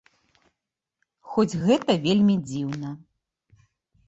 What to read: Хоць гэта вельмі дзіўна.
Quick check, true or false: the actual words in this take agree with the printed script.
true